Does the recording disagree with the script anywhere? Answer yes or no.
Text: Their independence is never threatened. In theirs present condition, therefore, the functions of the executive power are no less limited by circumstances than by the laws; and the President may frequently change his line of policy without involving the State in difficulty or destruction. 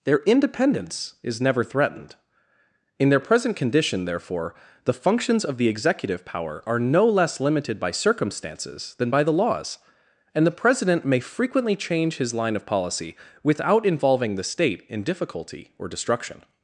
yes